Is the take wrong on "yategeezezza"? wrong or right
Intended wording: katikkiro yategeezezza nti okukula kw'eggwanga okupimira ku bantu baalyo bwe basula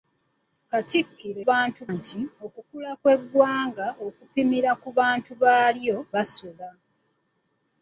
wrong